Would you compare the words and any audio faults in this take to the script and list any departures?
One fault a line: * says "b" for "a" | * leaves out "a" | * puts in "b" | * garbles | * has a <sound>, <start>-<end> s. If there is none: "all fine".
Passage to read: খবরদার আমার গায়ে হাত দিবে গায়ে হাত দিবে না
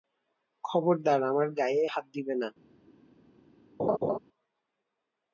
* leaves out "গায়ে হাত দিবে"
* has a laugh, 3.8-4.2 s